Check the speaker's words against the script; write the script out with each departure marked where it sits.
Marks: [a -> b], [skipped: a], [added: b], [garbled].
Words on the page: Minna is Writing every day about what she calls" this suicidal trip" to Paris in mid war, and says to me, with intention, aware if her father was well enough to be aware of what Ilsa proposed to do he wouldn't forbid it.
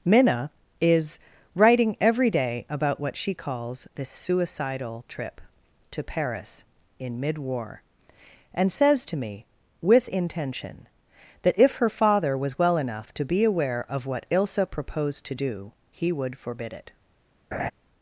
Minna is Writing every day about what she calls" this suicidal trip" to Paris in mid war, and says to me, with intention, [aware -> that] if her father was well enough to be aware of what Ilsa proposed to do he [wouldn't -> would] forbid it.